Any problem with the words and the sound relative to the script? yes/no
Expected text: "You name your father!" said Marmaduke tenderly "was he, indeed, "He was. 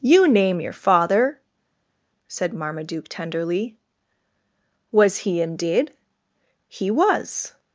no